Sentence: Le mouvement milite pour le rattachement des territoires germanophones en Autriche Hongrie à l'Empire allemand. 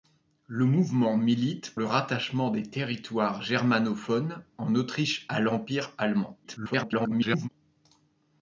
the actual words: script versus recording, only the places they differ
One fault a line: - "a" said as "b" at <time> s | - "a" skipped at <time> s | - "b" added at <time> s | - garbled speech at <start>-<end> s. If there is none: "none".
- "pour" skipped at 1.8 s
- "Hongrie" skipped at 5.3 s
- garbled speech at 6.4-7.5 s